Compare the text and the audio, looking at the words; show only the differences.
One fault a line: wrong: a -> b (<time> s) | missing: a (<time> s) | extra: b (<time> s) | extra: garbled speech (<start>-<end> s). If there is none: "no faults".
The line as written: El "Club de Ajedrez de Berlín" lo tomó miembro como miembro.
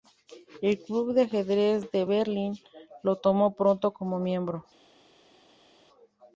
wrong: miembro -> pronto (3.6 s)